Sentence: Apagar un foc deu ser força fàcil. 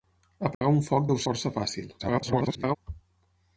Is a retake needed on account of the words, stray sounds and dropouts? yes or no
yes